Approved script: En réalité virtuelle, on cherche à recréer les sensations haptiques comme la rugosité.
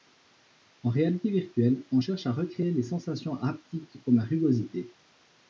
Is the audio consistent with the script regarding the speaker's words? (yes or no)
yes